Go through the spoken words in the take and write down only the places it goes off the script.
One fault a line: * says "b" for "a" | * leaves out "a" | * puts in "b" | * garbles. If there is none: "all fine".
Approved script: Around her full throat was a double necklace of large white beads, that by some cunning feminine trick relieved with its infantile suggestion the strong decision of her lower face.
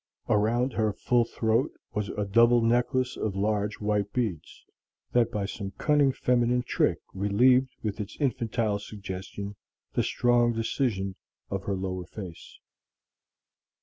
all fine